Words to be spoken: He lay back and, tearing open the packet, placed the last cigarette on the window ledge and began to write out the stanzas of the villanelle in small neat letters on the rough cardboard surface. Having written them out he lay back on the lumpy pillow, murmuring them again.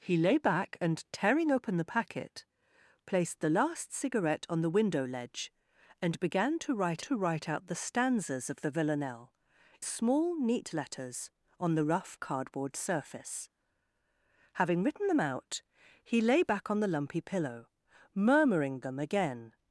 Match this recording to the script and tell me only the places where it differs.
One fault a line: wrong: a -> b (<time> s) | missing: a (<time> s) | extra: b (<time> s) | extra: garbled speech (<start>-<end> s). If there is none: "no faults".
extra: to write (7.0 s)
missing: in (9.3 s)